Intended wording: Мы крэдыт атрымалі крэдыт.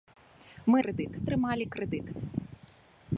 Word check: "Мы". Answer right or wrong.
right